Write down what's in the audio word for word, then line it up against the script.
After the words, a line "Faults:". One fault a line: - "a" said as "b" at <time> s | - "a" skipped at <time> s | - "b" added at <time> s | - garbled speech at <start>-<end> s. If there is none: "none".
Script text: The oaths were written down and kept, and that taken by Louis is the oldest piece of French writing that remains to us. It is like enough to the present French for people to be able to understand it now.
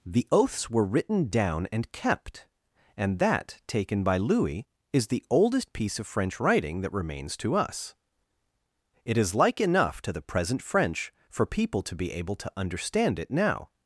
The oaths were written down and kept, and that taken by Louis is the oldest piece of French writing that remains to us. It is like enough to the present French for people to be able to understand it now.
Faults:
none